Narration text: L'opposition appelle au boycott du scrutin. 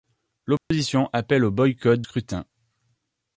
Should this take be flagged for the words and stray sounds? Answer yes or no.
yes